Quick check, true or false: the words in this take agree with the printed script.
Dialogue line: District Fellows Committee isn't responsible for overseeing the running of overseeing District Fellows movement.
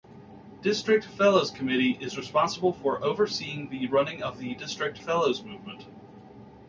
false